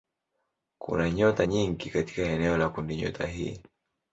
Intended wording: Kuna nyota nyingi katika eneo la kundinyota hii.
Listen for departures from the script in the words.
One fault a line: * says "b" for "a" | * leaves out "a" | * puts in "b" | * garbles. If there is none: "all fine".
all fine